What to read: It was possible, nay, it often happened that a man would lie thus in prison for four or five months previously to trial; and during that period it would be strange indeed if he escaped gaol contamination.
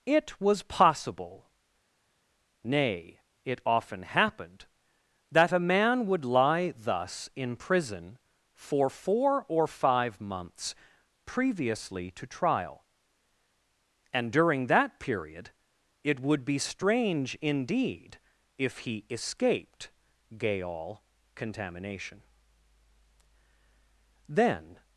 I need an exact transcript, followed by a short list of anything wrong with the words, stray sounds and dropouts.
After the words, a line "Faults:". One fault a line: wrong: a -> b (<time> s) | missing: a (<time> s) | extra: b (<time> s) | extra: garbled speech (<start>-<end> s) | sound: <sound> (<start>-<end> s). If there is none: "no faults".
It was possible, nay, it often happened that a man would lie thus in prison for four or five months previously to trial; and during that period it would be strange indeed if he escaped gaol contamination. Then
Faults:
extra: Then (24.3 s)